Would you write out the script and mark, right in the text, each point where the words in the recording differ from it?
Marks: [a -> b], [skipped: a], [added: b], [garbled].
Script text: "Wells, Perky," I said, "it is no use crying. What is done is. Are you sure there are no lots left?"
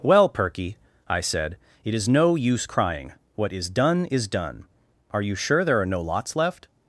["Wells, -> Well] Perky," I said, "it is no use crying. What is done is. [added: done] Are you sure there are no lots left?"